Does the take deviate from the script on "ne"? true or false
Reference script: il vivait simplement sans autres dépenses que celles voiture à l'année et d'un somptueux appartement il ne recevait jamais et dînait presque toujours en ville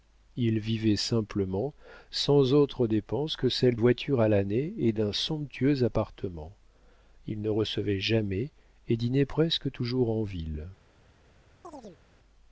false